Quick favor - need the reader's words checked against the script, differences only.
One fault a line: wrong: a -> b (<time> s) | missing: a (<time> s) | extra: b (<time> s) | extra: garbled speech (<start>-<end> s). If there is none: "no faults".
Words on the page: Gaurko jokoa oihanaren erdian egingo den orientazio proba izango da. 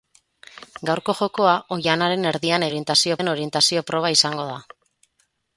wrong: egingo -> orientazio (2.7 s)